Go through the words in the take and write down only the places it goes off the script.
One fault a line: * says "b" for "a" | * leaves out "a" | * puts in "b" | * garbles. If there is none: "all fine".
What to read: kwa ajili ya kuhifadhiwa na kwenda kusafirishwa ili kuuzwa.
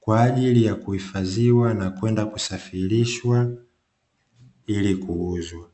all fine